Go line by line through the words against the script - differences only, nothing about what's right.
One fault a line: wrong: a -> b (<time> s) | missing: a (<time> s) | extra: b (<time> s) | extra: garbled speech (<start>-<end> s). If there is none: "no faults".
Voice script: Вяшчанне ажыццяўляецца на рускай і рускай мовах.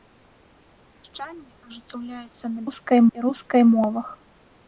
no faults